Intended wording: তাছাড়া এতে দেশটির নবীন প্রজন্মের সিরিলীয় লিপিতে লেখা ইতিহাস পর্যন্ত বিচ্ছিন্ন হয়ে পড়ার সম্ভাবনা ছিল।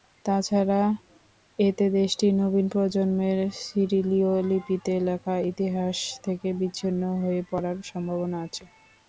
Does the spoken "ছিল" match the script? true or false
false